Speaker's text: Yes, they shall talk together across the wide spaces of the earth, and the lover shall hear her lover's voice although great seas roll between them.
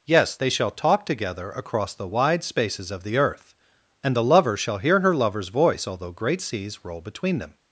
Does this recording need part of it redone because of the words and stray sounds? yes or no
no